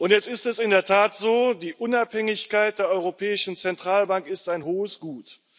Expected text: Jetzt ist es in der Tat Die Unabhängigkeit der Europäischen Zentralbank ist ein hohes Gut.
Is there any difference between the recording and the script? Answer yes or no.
yes